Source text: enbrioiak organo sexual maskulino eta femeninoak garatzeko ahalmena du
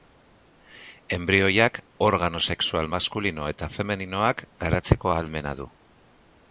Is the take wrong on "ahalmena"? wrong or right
right